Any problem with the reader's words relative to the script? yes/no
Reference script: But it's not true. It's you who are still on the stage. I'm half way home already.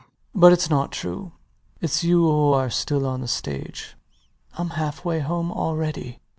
no